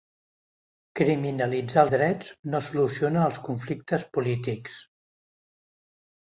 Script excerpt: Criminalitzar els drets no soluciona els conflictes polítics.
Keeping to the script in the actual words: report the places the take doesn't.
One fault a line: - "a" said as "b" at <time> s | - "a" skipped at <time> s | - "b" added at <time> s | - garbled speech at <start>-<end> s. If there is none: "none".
- "els" skipped at 1.8 s